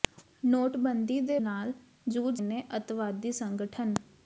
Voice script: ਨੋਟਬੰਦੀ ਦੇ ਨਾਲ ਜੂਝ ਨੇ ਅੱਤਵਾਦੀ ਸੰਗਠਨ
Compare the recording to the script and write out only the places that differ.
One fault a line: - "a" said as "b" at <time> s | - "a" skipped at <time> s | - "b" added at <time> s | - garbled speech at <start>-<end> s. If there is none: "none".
none